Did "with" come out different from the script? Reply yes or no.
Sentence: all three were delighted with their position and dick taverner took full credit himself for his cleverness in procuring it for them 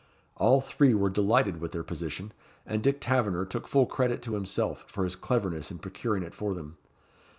no